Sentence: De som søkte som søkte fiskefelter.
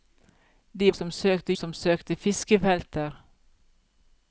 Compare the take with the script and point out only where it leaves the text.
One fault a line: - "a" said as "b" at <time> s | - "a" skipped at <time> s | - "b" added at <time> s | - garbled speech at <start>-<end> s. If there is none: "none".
none